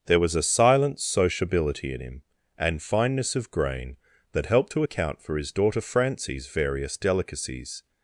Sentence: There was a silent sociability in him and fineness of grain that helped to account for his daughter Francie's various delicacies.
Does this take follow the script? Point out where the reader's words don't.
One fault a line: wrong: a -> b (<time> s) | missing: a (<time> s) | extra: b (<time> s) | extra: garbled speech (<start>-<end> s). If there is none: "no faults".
no faults